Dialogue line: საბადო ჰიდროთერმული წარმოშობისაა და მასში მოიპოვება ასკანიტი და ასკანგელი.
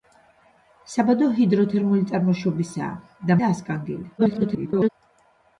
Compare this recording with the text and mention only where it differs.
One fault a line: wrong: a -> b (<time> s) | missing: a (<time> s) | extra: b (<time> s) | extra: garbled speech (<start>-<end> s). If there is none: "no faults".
missing: მასში მოიპოვება ასკანიტი (3.4 s)
extra: garbled speech (4.2-4.9 s)